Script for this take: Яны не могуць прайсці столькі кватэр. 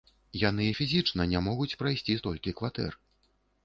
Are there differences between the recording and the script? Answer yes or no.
yes